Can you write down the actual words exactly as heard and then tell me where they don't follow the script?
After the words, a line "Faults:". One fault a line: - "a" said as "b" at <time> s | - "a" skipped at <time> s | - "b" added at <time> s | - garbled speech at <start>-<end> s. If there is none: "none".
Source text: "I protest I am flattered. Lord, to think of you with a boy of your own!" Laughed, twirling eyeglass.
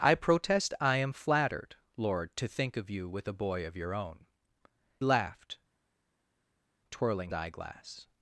"I protest I am flattered. Lord, to think of you with a boy of your own!" Laughed, twirling eyeglass.
Faults:
none